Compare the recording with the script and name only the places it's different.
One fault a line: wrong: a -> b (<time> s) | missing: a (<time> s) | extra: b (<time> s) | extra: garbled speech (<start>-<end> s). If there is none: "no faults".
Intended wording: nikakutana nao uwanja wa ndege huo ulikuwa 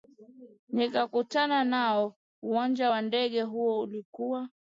no faults